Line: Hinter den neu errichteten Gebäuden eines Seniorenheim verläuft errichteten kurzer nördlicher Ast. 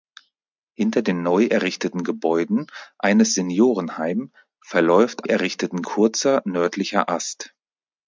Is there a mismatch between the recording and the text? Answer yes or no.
no